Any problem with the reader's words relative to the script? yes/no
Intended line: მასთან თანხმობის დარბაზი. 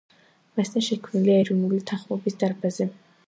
yes